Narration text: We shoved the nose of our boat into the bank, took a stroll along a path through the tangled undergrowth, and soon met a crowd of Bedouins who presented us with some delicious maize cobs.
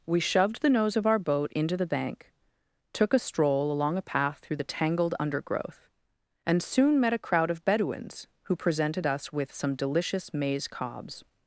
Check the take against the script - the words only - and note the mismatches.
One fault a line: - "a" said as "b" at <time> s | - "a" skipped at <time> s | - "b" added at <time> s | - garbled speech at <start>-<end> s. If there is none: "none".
none